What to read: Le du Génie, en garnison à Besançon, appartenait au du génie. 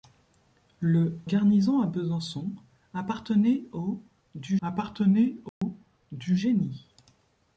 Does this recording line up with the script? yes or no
no